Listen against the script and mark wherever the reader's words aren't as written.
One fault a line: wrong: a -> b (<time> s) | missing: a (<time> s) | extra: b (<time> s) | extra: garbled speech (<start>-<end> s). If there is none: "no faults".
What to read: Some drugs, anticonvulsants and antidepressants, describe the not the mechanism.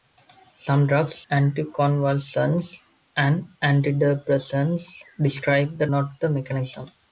no faults